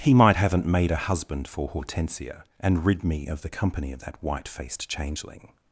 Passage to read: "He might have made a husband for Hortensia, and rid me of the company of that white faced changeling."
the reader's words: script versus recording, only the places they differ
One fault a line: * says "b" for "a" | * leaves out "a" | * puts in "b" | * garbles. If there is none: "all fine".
* says "haven't" for "have"